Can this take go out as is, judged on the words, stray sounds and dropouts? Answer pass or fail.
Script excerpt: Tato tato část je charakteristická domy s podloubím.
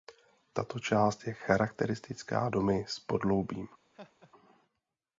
fail